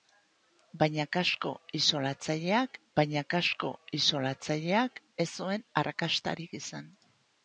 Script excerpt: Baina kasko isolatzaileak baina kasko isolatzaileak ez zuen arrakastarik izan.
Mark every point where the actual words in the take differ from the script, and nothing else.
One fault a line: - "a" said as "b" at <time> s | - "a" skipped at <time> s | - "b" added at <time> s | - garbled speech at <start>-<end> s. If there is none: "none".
none